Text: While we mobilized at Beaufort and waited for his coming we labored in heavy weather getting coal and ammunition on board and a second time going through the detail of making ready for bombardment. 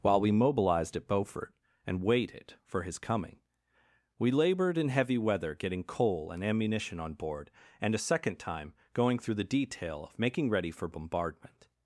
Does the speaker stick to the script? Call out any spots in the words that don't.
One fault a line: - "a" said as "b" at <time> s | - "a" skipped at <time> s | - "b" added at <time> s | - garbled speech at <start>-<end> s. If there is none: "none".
none